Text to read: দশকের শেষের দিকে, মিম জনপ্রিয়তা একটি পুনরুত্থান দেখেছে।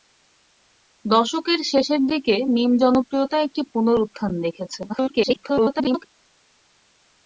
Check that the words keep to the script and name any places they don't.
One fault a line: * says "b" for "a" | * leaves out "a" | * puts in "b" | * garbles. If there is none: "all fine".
* garbles